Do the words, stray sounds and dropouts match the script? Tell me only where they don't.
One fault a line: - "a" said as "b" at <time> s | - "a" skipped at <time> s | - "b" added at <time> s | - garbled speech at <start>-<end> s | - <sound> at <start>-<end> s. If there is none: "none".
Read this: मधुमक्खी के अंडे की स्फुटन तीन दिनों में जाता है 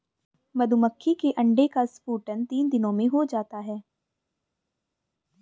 - "की" said as "का" at 1.7 s
- "हो" added at 3.1 s